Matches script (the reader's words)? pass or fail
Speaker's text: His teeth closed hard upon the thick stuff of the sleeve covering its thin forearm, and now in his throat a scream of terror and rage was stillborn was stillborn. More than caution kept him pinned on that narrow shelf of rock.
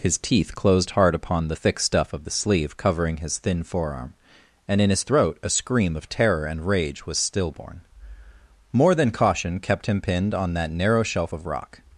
fail